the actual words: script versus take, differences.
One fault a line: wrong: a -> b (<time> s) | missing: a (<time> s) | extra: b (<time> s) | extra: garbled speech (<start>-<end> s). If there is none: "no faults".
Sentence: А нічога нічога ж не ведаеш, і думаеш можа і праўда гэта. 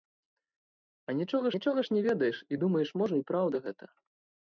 no faults